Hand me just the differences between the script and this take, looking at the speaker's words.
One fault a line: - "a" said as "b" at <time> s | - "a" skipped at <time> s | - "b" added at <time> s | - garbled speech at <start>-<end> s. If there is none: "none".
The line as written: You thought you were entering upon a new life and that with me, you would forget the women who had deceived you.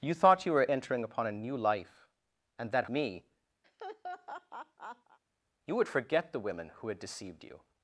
- "with" skipped at 2.9 s